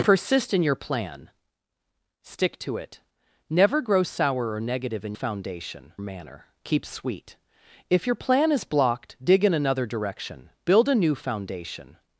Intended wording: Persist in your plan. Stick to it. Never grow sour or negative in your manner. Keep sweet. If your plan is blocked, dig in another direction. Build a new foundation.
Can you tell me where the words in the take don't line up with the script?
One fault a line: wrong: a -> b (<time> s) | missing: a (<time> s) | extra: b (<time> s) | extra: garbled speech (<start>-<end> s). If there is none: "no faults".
wrong: your -> foundation (5.1 s)